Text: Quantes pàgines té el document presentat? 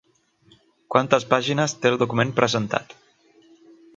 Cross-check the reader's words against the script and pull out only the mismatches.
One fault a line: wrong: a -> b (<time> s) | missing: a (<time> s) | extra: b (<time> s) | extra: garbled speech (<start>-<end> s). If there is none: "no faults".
no faults